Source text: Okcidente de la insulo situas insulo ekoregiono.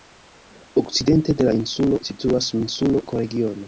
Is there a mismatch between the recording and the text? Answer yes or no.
no